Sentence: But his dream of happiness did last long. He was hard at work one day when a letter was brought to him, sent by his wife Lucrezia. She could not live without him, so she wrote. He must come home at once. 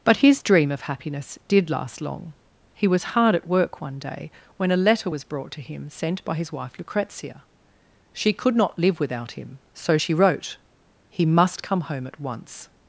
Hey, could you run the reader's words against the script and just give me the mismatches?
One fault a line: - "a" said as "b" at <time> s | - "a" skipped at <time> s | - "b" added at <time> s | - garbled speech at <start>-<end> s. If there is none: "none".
none